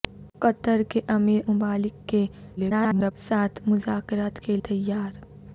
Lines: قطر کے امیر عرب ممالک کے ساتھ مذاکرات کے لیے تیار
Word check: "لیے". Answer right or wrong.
wrong